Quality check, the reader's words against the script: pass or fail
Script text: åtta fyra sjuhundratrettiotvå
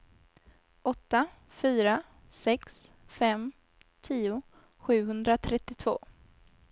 fail